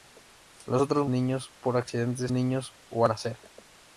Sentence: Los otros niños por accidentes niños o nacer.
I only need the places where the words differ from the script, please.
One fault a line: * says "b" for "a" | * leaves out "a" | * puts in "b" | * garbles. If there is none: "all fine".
all fine